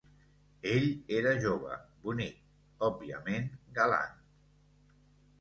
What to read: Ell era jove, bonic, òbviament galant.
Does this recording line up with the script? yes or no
yes